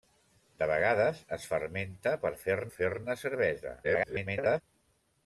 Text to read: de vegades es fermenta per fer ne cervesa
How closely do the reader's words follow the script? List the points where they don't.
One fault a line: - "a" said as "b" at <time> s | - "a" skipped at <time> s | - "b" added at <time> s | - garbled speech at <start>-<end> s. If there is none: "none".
- "fer" added at 2.8 s
- garbled speech at 3.8-4.6 s